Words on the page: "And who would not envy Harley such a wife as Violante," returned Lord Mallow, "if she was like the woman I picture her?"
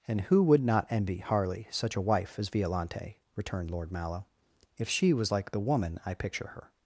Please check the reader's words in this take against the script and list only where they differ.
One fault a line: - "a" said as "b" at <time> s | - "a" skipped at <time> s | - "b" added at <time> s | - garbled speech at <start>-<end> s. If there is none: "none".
none